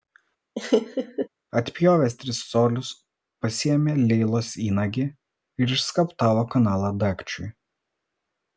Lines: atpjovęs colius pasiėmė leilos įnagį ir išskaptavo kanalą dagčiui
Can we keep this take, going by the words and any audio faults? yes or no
no